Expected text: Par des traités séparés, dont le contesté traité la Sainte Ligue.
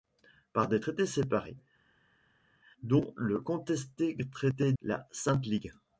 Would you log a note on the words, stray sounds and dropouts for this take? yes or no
no